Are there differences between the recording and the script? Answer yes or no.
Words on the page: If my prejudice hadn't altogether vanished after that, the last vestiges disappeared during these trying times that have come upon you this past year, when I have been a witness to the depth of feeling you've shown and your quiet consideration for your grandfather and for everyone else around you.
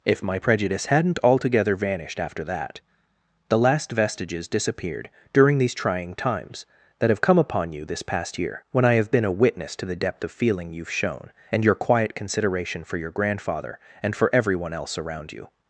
no